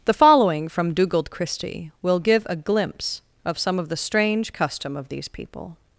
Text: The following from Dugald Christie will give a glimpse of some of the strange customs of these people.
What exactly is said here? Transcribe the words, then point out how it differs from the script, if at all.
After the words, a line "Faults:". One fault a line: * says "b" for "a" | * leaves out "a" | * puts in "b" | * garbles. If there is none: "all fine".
The following from Dugald Christie will give a glimpse of some of the strange custom of these people.
Faults:
* says "custom" for "customs"